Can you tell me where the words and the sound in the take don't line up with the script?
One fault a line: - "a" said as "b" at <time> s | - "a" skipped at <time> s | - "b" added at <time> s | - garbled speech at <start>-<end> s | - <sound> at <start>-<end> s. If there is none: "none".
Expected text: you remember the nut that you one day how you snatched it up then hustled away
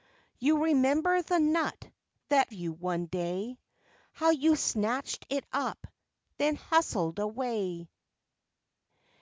none